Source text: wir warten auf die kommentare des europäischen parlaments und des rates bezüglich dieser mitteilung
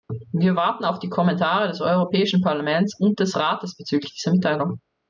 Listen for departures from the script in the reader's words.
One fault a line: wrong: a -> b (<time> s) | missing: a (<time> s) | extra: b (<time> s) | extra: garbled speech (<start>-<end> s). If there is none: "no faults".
no faults